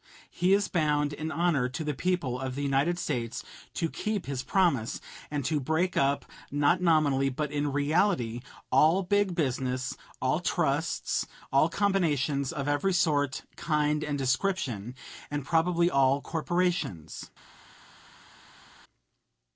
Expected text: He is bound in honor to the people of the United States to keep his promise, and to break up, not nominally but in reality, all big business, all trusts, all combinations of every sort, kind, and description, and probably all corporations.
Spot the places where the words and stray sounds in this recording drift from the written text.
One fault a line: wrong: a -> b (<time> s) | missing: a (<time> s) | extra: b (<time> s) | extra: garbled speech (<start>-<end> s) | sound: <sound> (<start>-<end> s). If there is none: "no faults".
no faults